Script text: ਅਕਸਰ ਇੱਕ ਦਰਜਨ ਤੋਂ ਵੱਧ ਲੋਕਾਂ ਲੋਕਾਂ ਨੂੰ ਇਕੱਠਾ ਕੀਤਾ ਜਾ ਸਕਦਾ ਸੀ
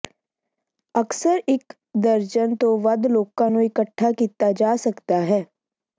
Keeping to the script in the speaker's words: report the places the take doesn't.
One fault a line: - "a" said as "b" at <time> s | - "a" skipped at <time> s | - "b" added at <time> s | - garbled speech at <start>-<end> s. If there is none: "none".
- "ਲੋਕਾਂ" skipped at 3.5 s
- "ਸੀ" said as "ਹੈ" at 5.2 s